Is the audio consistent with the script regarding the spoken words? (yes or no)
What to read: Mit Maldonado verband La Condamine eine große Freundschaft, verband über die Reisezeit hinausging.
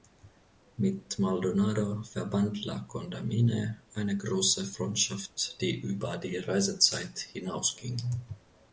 no